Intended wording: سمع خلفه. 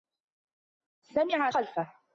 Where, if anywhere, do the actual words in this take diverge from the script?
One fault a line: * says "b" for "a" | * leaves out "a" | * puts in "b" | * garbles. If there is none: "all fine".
all fine